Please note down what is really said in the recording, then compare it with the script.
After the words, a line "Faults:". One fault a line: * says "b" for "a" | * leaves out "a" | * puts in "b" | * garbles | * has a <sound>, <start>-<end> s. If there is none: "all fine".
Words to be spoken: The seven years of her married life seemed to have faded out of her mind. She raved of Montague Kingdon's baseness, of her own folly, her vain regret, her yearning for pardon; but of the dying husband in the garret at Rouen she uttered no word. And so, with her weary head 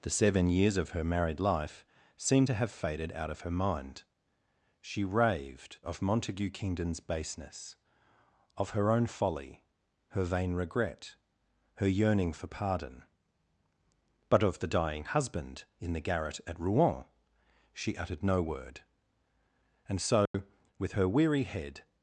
The seven years of her married life seemed to have faded out of her mind. She raved of Montague Kingdon's baseness, of her own folly, her vain regret, her yearning for pardon; but of the dying husband in the garret at Rouen she uttered no word. And so, with her weary head
Faults:
* has a dropout, 20.3-20.3 s